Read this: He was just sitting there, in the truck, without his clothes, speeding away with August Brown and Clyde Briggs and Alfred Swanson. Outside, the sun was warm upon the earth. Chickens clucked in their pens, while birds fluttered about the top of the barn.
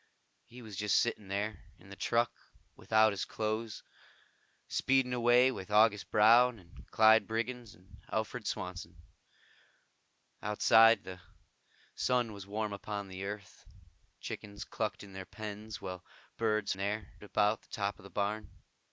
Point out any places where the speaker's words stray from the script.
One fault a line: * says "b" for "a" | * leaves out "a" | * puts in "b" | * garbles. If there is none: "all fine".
* says "there" for "fluttered"